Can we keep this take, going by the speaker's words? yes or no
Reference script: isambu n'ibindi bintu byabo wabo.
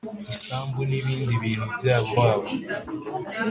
yes